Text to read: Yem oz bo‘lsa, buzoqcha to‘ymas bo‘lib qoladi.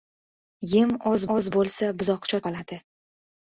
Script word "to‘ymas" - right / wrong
wrong